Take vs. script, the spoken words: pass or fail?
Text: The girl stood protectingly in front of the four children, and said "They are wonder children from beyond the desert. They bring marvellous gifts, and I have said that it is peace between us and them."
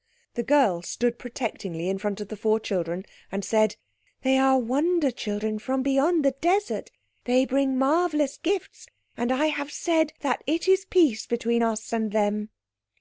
pass